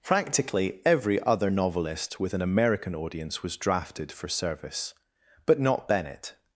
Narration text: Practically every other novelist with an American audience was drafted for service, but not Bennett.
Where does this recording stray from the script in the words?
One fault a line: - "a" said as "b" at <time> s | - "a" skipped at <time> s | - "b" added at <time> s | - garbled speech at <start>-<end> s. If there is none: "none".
none